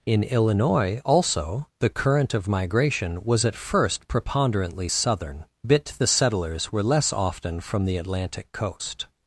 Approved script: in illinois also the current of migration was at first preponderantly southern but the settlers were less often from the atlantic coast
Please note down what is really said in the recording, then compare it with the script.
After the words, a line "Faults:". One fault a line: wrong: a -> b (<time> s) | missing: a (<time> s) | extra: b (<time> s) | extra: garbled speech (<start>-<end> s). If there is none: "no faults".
in illinois also the current of migration was at first preponderantly southern bit the settlers were less often from the atlantic coast
Faults:
wrong: but -> bit (5.7 s)